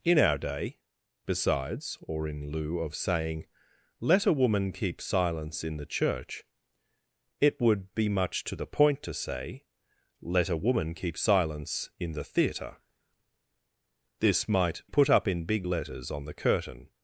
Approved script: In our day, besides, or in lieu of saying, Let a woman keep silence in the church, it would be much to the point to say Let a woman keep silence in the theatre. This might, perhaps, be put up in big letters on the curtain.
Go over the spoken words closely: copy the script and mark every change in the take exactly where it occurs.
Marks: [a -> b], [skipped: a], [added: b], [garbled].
In our day, besides, or in lieu of saying, Let a woman keep silence in the church, it would be much to the point to say Let a woman keep silence in the theatre. This might, [skipped: perhaps, be] put up in big letters on the curtain.